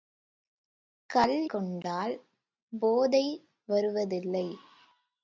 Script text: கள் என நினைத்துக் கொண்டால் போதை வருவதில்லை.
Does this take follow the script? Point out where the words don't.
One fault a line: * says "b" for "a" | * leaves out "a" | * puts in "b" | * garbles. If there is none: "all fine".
* leaves out "என நினைத்துக்"